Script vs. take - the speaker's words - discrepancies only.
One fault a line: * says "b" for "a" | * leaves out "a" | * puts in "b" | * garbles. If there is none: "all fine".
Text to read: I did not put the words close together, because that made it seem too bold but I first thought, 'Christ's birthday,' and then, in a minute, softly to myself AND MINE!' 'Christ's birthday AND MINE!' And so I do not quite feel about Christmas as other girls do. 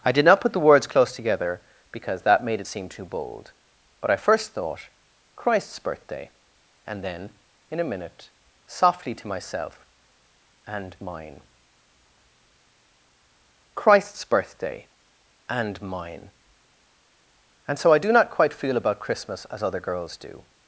all fine